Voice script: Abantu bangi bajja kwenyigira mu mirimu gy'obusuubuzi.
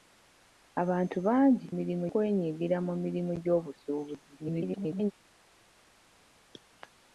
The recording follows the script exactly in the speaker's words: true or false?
false